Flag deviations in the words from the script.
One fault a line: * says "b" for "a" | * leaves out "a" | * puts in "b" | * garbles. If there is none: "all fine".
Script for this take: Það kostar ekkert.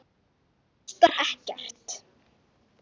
all fine